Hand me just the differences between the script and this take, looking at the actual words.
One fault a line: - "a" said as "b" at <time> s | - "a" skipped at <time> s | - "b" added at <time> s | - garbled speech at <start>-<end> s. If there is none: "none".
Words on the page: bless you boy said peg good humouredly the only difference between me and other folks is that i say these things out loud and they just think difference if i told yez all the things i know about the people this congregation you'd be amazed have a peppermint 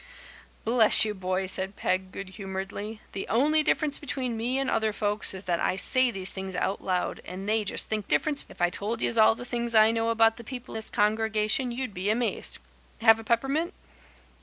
none